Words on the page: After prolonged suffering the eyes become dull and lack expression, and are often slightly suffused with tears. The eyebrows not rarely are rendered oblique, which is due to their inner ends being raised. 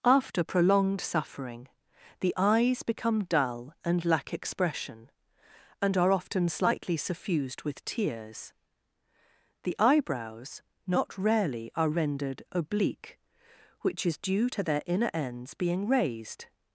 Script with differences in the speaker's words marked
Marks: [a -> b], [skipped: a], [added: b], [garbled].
After prolonged suffering the eyes become dull and lack expression, and are often slightly suffused with tears. The eyebrows not rarely are rendered oblique, which is due to their inner ends being raised.